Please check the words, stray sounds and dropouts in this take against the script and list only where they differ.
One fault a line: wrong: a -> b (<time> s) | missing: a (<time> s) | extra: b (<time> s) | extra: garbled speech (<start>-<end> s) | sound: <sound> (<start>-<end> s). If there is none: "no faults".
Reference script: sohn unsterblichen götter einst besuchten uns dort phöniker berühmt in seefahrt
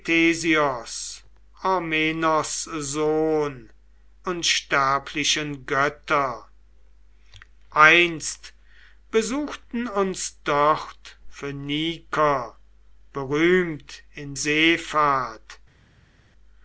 no faults